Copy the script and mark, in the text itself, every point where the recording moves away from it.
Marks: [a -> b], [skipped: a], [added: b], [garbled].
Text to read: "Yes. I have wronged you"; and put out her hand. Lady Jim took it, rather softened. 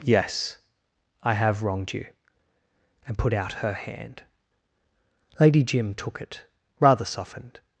"Yes. I have wronged you"; and put out her hand. Lady Jim took it, rather softened.